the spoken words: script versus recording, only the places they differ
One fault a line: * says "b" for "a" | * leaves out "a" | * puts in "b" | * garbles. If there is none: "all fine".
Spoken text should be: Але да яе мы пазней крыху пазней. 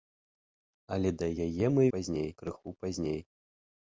all fine